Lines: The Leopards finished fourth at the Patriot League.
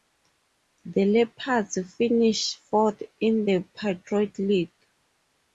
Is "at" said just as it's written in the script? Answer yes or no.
no